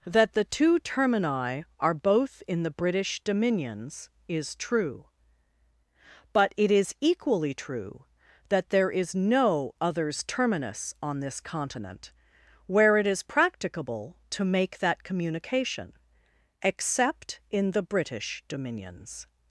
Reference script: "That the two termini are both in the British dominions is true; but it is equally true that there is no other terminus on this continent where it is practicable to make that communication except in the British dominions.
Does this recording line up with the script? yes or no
no